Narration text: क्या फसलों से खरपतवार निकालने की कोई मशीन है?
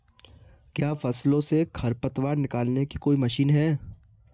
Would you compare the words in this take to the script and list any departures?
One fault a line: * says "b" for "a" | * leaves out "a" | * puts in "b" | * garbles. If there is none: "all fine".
all fine